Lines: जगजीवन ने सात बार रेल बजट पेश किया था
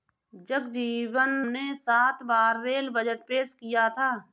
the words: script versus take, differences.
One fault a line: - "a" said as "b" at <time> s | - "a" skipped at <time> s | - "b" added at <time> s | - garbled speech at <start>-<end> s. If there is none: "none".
none